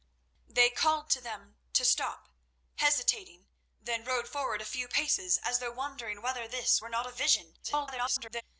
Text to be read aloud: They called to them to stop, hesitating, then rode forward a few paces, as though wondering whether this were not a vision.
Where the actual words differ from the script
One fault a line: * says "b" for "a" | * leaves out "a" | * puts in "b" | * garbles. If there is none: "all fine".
* garbles